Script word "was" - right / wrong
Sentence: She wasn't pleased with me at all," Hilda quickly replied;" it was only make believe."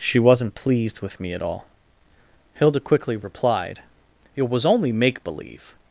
right